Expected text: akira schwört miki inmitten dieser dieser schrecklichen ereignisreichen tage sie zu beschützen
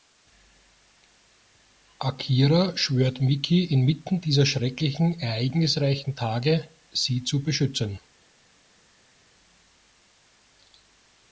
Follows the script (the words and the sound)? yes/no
no